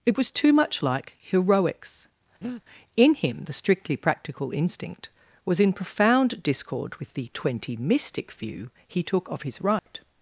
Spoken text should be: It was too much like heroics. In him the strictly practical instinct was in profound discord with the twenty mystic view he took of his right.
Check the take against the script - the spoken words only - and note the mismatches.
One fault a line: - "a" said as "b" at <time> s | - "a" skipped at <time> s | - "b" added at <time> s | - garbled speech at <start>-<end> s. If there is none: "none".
none